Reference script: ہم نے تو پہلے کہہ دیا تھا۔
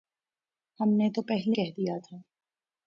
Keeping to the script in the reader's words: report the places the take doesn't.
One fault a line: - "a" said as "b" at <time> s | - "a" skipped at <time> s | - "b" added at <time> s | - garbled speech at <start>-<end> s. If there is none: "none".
none